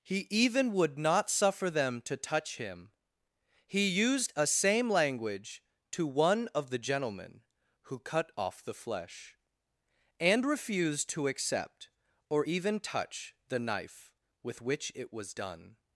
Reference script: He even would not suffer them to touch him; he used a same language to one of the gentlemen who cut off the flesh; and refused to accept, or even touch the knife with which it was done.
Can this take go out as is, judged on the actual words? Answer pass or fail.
pass